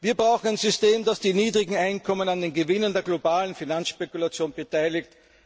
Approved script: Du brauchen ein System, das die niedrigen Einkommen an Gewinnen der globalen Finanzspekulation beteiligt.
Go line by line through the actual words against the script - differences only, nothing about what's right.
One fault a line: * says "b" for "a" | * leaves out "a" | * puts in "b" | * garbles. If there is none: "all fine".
* says "Wir" for "Du"
* puts in "den"